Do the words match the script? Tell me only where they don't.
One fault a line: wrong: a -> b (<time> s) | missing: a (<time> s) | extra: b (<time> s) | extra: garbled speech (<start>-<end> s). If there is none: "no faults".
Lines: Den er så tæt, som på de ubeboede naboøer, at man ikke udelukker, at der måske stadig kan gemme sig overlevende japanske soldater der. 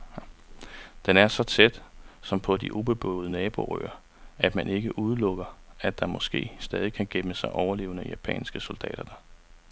no faults